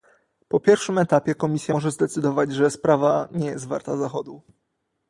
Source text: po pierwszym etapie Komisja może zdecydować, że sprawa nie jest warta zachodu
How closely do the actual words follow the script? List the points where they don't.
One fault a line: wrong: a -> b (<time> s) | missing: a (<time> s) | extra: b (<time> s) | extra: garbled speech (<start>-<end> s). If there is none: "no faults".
no faults